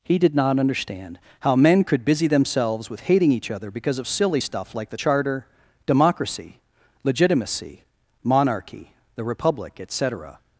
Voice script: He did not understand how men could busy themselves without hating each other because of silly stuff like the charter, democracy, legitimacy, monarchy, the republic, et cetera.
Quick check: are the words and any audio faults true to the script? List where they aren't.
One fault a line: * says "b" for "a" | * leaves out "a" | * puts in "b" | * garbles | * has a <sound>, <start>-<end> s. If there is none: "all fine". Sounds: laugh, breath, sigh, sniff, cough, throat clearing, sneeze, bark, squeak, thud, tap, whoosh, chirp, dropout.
* says "with" for "without"